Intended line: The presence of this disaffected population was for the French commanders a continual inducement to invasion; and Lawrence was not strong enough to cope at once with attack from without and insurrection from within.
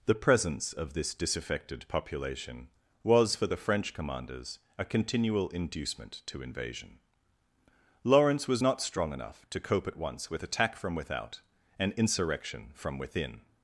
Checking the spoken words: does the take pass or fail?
fail